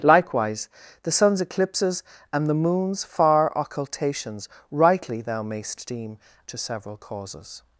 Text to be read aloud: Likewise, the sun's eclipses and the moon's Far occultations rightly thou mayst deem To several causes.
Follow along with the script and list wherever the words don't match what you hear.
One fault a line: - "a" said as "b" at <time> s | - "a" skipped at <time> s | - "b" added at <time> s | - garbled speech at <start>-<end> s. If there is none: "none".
none